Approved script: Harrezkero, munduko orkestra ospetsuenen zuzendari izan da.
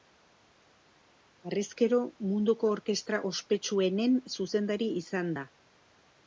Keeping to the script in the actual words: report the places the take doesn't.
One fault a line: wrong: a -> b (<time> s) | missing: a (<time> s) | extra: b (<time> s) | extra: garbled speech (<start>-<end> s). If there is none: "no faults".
no faults